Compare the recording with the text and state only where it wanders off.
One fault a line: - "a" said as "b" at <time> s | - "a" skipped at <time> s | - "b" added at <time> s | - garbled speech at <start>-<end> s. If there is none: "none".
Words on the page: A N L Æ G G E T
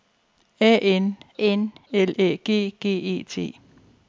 - "N" added at 1.4 s